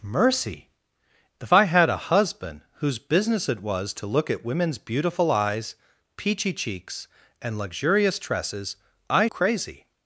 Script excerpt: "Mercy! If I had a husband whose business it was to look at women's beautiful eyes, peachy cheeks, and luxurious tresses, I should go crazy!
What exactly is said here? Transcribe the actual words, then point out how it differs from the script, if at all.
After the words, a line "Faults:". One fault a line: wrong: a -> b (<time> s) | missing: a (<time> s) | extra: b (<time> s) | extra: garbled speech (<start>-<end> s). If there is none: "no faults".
"Mercy! If I had a husband whose business it was to look at women's beautiful eyes, peachy cheeks, and luxurious tresses, I crazy!
Faults:
missing: should go (9.3 s)